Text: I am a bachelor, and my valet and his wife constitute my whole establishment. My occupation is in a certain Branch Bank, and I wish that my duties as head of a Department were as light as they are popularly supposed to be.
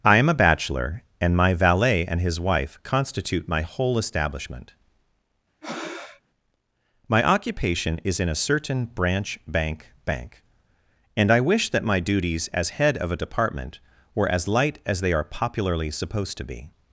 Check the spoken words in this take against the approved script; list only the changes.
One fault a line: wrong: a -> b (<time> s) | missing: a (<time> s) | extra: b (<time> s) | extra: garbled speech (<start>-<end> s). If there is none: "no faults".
extra: Bank (10.0 s)